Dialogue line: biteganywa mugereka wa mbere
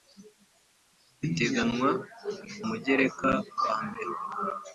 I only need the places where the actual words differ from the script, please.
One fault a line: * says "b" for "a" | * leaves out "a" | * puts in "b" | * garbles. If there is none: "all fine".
all fine